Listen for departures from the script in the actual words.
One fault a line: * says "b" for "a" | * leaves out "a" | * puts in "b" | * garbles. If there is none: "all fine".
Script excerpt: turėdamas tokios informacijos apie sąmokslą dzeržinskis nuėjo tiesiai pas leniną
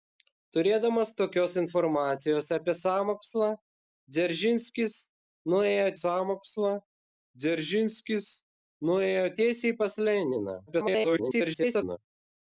* puts in "sąmokslą dzeržinskis nuėjo"
* garbles